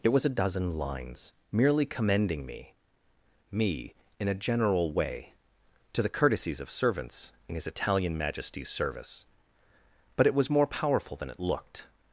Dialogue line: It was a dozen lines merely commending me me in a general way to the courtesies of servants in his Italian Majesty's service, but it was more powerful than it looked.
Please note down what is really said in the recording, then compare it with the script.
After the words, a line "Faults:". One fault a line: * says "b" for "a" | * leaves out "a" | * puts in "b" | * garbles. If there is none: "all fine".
It was a dozen lines merely commending me me in a general way to the courtesies of servants in his Italian Majesty's service, but it was more powerful than it looked.
Faults:
all fine